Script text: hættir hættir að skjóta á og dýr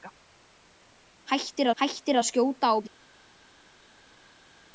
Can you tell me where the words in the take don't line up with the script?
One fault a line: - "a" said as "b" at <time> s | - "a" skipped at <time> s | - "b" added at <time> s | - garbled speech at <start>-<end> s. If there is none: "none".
none